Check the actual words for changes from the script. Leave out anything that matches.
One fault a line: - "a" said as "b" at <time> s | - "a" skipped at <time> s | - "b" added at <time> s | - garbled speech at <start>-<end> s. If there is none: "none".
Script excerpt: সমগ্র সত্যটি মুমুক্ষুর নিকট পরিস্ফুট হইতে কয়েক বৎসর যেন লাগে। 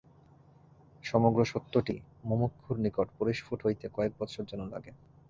none